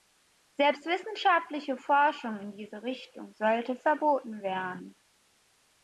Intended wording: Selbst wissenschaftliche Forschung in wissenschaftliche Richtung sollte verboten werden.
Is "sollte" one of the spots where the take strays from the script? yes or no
no